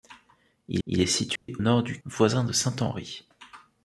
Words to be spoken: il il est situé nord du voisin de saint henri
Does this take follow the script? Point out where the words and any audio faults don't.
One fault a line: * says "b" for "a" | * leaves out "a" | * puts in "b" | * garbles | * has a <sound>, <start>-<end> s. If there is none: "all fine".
* has a dropout, 1.4-1.5 s